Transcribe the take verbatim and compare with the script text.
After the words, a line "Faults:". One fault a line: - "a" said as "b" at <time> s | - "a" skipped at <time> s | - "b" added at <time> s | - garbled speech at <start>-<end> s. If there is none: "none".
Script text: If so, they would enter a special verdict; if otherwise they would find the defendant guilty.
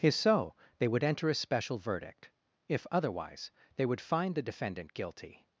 If so, they would enter a special verdict; if otherwise they would find the defendant guilty.
Faults:
none